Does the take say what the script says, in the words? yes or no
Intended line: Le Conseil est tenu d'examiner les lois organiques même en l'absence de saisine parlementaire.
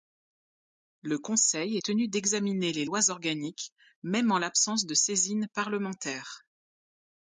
yes